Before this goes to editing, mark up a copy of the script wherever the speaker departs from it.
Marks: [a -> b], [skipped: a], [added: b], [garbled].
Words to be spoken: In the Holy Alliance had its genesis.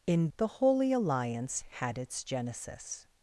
In the Holy Alliance had its genesis.